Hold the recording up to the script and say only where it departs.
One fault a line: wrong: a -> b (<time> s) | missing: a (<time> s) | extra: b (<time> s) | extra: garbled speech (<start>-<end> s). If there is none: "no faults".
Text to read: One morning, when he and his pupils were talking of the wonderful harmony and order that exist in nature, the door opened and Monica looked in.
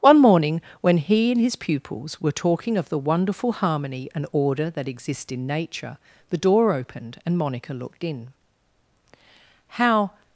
extra: How (9.7 s)